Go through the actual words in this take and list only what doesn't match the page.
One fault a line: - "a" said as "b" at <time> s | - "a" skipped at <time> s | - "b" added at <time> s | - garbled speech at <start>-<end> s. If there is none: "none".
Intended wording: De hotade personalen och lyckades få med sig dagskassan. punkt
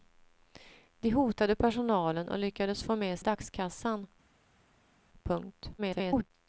- "sig" skipped at 3.2 s
- garbled speech at 5.8-6.3 s